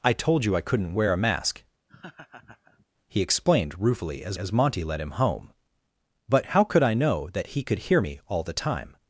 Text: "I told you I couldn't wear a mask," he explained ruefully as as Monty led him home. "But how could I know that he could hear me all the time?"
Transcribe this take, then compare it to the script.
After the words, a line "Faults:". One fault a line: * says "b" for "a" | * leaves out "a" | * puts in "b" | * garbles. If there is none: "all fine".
"I told you I couldn't wear a mask," he explained ruefully as as Monty led him home. "But how could I know that he could hear me all the time?"
Faults:
all fine